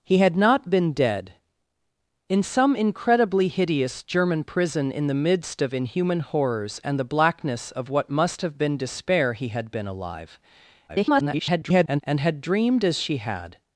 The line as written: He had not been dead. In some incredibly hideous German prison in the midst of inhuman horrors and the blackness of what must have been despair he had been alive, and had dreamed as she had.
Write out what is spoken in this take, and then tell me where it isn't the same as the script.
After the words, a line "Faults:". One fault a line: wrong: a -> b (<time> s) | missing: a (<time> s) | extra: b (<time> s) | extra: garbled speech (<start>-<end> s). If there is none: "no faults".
He had not been dead. In some incredibly hideous German prison in the midst of inhuman horrors and the blackness of what must have been despair he had been alive, [garbled] and had dreamed as she had.
Faults:
extra: garbled speech (10.9-12.0 s)